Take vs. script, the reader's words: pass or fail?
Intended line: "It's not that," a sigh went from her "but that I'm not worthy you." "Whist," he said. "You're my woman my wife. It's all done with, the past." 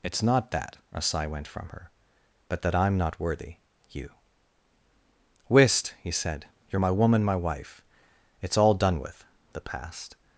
pass